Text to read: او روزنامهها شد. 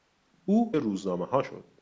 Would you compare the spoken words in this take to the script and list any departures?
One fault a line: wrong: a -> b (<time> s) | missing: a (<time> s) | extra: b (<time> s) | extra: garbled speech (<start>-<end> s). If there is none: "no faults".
no faults